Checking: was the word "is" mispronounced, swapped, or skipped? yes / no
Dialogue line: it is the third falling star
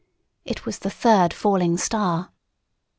yes